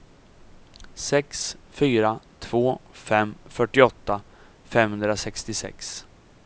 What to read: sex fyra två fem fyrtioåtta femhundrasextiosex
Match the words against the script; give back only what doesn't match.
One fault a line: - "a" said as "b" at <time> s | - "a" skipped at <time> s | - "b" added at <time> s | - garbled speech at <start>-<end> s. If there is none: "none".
none